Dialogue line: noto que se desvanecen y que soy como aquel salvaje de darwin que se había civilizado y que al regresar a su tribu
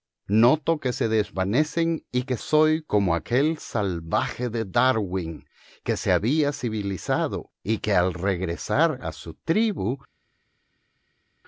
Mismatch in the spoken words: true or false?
false